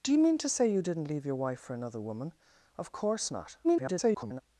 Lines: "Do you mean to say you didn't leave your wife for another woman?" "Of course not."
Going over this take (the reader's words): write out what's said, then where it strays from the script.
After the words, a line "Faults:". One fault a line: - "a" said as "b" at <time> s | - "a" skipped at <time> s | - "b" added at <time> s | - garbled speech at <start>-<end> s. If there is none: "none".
"Do you mean to say you didn't leave your wife for another woman?" "Of course not." [garbled]
Faults:
- garbled speech at 3.6-4.4 s